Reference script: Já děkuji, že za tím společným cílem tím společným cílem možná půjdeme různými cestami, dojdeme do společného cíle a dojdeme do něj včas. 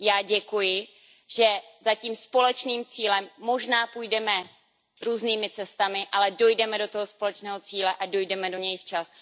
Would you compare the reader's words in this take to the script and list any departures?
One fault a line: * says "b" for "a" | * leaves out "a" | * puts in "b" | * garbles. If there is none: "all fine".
* leaves out "tím společným cílem"
* puts in "ale"
* puts in "toho"